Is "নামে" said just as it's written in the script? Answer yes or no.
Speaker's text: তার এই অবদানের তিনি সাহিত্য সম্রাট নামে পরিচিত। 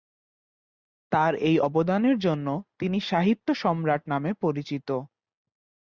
yes